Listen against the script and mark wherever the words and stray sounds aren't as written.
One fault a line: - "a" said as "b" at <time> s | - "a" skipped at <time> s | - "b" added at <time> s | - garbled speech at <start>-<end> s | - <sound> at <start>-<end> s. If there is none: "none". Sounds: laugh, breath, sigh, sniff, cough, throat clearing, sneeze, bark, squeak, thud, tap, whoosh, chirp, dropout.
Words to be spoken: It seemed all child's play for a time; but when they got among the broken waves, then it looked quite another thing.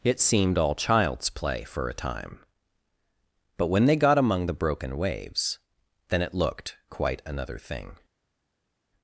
none